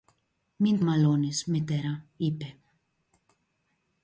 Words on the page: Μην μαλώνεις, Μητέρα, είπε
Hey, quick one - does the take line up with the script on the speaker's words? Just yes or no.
yes